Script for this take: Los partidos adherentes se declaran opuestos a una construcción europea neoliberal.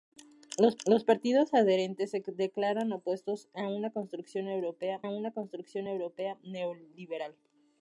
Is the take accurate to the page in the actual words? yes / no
no